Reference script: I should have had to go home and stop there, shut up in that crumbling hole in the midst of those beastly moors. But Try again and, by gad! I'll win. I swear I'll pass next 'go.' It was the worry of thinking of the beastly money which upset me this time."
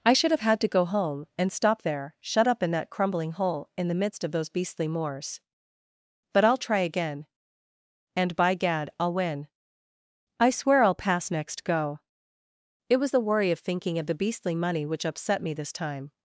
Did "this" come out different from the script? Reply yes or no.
no